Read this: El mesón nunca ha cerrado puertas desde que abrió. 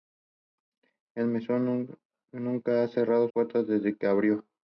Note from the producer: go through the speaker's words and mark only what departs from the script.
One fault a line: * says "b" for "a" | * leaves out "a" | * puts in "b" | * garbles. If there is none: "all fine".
all fine